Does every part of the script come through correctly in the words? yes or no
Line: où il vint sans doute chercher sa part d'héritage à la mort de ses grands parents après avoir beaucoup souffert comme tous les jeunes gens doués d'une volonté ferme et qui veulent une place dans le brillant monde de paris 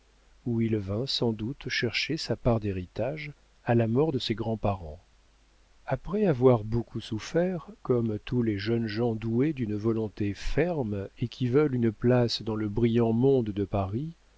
yes